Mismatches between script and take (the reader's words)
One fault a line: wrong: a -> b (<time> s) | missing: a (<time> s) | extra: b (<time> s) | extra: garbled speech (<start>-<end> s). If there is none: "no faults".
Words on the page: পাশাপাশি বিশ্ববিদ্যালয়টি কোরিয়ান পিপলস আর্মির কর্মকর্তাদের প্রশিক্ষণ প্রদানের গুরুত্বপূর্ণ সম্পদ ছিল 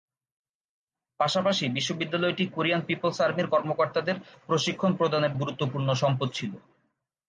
no faults